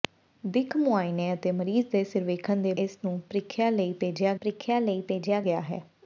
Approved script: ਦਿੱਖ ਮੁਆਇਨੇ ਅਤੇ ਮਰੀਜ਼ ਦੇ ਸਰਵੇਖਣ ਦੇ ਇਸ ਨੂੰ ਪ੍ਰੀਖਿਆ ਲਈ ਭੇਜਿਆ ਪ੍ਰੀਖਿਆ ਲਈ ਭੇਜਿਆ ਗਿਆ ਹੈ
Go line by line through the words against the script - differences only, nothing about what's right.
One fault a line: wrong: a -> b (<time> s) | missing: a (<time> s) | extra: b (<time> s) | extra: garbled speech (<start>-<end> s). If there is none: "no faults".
no faults